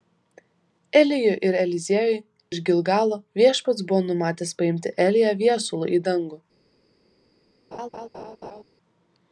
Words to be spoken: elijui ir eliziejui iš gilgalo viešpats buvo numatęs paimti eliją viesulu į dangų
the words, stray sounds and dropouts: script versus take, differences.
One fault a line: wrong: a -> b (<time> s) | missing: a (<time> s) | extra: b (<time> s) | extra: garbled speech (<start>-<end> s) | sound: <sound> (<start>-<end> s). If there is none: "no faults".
sound: laugh (7.7-8.6 s)